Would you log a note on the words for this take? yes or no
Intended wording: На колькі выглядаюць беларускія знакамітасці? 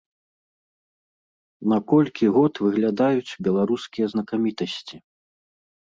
yes